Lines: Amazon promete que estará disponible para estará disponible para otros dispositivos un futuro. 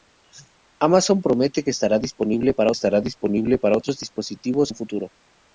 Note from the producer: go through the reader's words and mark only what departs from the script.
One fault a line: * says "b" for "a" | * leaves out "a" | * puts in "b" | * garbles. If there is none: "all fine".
all fine